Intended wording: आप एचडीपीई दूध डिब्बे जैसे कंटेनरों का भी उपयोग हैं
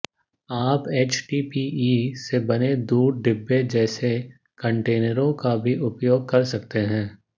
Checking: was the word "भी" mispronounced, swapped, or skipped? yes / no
no